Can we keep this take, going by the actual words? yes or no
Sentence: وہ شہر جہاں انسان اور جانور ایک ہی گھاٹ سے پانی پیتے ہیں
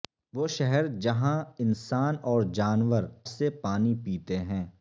no